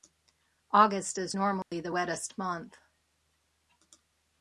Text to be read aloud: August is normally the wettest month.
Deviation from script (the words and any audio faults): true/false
true